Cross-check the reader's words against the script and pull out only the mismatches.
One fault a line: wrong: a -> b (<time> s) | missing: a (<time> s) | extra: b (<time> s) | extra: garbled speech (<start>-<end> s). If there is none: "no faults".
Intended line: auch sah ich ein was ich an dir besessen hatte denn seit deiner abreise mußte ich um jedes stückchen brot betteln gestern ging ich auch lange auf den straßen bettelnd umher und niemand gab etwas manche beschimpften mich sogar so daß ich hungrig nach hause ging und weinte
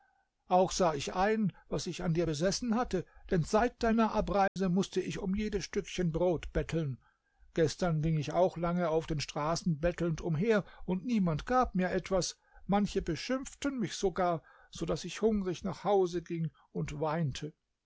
extra: mir (11.7 s)